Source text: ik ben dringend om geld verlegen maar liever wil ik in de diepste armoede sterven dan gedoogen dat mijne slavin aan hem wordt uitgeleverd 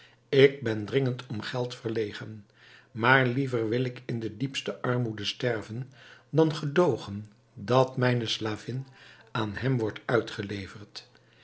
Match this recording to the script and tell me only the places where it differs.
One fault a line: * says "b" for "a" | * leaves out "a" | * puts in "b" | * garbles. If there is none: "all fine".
all fine